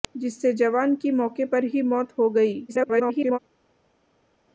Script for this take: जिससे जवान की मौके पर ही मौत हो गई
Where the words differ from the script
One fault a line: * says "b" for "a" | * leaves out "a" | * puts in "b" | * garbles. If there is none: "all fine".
* garbles